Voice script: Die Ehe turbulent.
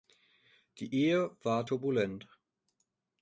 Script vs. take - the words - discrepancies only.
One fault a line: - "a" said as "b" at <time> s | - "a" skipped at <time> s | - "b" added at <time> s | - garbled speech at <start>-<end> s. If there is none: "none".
- "war" added at 1.4 s